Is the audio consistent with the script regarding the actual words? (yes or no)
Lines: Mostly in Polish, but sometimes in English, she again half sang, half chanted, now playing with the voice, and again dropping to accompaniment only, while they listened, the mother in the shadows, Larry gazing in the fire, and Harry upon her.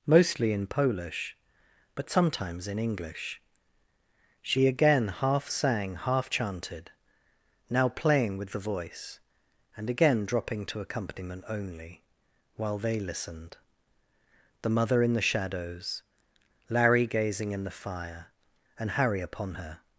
yes